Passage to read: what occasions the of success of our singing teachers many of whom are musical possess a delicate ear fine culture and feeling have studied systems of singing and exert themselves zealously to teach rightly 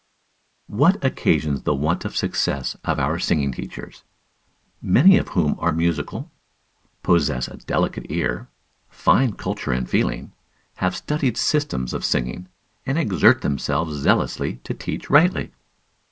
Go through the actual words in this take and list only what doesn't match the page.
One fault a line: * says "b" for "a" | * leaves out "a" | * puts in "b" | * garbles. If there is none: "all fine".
* puts in "want"